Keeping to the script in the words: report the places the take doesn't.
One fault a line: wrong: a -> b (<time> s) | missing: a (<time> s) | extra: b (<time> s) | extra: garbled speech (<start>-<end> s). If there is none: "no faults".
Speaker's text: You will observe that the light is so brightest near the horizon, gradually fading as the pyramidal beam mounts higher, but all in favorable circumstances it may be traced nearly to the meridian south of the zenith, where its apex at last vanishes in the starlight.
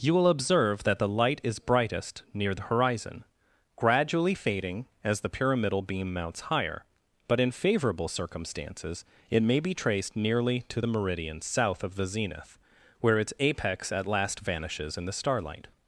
missing: so (1.6 s)
missing: all (7.4 s)